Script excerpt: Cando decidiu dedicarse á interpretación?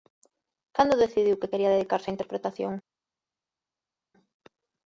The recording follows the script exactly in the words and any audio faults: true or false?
false